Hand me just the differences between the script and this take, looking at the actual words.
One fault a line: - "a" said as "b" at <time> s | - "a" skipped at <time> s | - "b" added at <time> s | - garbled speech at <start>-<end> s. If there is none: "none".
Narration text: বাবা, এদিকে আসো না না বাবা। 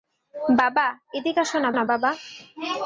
none